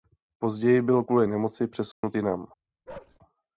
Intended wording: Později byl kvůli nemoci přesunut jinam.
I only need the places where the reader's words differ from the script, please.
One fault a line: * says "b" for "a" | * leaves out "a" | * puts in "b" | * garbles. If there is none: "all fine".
all fine